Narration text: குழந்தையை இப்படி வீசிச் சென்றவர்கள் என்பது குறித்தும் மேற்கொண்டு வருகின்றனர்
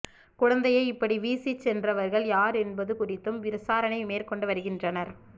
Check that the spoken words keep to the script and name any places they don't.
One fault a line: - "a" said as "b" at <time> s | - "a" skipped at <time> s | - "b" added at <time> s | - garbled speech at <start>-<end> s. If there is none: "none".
- "யார்" added at 2.3 s
- "விசாரணை" added at 3.5 s